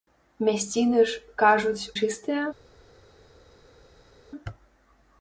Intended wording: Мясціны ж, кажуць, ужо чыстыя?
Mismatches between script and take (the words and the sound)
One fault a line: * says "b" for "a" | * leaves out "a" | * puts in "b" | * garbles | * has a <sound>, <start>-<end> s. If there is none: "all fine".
* leaves out "ужо"